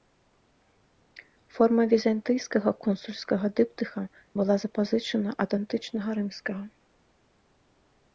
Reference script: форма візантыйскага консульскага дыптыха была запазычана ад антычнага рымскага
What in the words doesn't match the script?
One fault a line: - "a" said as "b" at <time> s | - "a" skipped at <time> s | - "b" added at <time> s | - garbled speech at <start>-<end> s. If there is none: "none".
none